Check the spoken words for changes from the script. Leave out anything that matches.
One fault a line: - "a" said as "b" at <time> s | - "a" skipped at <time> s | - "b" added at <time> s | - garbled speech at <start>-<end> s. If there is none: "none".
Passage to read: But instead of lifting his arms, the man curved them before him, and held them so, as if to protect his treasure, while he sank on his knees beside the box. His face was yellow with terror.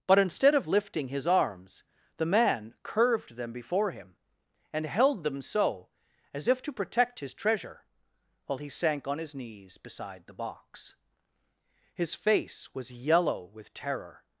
none